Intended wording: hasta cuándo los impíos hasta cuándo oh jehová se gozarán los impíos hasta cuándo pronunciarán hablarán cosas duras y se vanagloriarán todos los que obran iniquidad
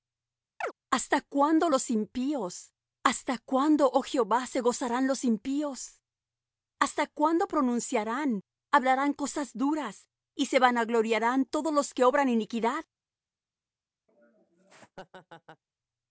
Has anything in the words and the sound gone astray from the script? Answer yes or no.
yes